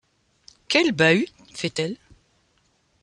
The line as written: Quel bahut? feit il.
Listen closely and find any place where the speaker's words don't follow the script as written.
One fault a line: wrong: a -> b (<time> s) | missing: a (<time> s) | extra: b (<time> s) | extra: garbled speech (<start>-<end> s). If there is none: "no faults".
wrong: il -> elle (1.8 s)